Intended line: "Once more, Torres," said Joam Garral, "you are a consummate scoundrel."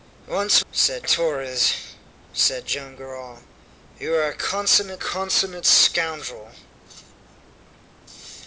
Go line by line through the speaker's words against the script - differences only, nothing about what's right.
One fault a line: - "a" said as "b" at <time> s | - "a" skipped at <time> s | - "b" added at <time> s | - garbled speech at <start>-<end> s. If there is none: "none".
- "more" said as "said" at 0.7 s
- "consummate" added at 5.0 s